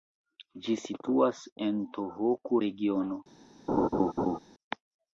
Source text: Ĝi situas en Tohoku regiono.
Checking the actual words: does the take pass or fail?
pass